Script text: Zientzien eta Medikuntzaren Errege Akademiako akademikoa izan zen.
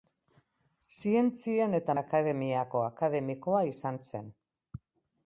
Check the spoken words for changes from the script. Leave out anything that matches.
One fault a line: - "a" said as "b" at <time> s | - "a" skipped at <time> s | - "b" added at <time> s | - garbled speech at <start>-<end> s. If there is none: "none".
- "Medikuntzaren Errege" skipped at 1.9 s